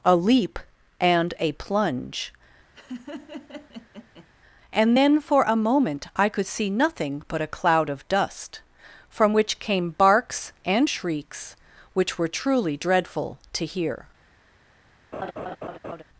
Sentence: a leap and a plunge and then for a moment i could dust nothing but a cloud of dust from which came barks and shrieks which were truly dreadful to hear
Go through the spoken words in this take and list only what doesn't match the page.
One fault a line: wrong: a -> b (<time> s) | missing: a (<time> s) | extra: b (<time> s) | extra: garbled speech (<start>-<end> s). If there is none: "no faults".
wrong: dust -> see (6.5 s)